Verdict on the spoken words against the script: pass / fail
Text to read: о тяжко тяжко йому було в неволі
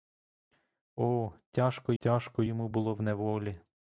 pass